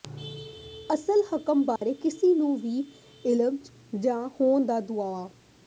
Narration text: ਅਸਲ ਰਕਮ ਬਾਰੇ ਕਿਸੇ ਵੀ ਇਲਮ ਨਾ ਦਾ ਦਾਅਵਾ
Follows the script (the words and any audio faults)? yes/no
no